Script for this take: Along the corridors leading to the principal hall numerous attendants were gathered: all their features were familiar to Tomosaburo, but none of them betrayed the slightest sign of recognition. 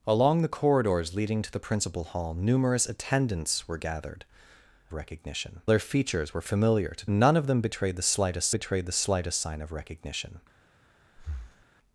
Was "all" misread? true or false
true